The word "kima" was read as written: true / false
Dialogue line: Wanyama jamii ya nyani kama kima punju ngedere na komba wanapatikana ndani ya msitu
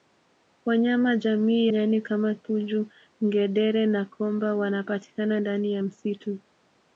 false